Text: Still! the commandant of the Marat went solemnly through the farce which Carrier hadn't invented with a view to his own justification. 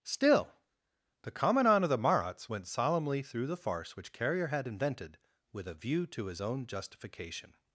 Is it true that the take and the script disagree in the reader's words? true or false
true